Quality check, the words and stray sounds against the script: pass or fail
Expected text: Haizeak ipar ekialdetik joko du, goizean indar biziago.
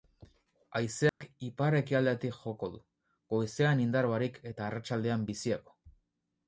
fail